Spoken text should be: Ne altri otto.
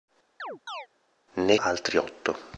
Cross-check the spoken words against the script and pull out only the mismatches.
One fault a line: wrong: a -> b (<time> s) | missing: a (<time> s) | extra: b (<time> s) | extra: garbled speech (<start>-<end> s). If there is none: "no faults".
no faults